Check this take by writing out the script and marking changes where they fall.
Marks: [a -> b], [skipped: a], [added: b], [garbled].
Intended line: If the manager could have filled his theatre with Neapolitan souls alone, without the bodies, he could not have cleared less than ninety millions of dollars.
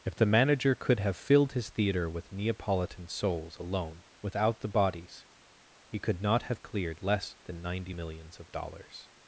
If the manager could have filled his theatre with Neapolitan souls alone, without the bodies, he could not have cleared less than ninety millions of dollars.